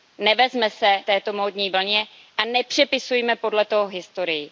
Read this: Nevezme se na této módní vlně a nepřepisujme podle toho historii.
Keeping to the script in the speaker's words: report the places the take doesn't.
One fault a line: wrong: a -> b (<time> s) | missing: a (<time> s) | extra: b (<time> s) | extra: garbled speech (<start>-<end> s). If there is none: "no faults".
missing: na (1.0 s)